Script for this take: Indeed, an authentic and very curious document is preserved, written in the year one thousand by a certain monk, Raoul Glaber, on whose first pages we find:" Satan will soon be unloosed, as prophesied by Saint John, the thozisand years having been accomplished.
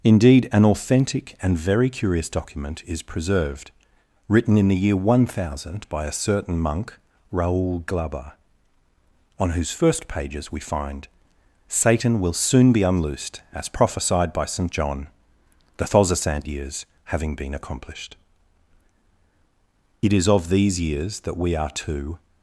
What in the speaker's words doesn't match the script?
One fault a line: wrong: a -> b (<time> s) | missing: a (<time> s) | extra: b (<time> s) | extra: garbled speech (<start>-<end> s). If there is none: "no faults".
extra: It is of these years that we are to (20.0 s)